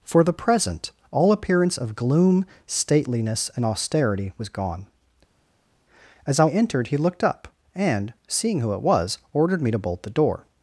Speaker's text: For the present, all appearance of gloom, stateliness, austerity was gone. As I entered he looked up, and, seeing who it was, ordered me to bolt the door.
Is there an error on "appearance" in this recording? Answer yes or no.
no